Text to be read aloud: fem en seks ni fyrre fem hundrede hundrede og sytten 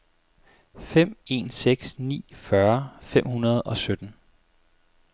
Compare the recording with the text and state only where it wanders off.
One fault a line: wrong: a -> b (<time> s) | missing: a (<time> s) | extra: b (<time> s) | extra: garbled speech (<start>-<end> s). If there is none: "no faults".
missing: hundrede (3.6 s)